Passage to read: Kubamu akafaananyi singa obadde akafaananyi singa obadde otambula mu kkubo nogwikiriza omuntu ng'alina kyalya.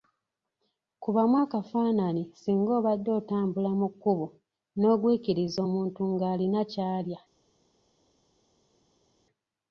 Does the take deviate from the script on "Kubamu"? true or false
false